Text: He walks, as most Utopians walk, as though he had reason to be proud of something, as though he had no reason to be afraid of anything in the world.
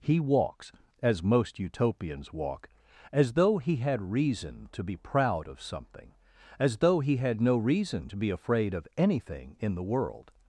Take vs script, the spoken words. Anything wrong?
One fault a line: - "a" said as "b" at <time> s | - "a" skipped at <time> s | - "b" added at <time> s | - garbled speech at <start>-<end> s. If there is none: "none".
none